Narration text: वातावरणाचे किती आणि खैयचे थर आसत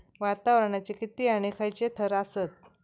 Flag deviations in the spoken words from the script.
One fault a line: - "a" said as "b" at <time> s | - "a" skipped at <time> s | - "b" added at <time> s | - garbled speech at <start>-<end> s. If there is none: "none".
none